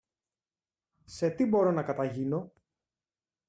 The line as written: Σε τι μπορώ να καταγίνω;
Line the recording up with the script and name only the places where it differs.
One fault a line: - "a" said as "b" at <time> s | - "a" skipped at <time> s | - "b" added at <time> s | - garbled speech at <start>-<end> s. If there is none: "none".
none